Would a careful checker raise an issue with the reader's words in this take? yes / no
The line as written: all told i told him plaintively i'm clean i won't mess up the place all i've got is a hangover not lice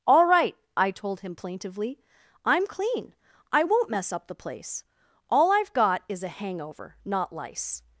yes